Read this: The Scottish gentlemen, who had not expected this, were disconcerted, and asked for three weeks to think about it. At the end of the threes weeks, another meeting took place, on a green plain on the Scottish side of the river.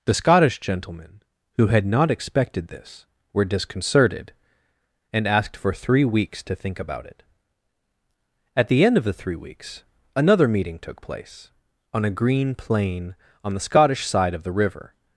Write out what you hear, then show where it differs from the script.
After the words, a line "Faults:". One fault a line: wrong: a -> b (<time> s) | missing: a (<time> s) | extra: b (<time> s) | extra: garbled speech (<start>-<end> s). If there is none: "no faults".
The Scottish gentlemen, who had not expected this, were disconcerted, and asked for three weeks to think about it. At the end of the three weeks, another meeting took place, on a green plain on the Scottish side of the river.
Faults:
wrong: threes -> three (9.1 s)